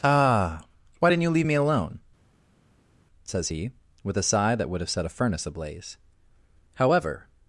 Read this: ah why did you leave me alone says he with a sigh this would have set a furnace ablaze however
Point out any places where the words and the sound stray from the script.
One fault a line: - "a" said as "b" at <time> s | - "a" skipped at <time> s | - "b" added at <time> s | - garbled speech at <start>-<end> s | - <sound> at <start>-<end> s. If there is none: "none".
- "did" said as "didn't" at 1.1 s
- "this" said as "that" at 4.6 s